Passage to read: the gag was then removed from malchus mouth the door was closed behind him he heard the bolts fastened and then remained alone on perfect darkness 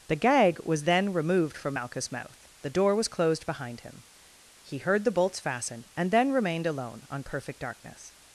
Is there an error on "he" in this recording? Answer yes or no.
no